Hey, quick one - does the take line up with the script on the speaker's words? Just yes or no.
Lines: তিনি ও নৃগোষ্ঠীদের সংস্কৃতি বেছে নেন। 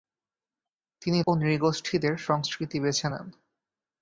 yes